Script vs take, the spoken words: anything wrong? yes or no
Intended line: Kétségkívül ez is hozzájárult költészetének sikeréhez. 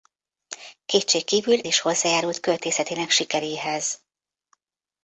yes